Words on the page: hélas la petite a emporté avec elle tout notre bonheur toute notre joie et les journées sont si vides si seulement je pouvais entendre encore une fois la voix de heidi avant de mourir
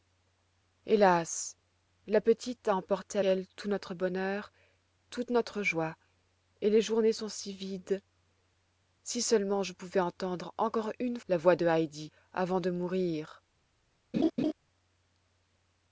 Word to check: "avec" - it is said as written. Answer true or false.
false